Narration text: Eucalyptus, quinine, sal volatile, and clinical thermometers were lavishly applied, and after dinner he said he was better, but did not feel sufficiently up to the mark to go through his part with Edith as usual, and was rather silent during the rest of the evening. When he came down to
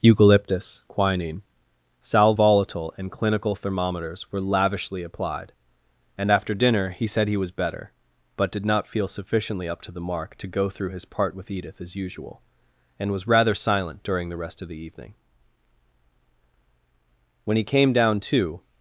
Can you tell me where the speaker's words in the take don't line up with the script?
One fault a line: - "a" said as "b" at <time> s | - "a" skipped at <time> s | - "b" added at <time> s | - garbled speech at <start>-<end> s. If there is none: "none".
none